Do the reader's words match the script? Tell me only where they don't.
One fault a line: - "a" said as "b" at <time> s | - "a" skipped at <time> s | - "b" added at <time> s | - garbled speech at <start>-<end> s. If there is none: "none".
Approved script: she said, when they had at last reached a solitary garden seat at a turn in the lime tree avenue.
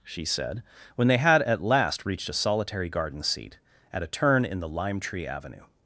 none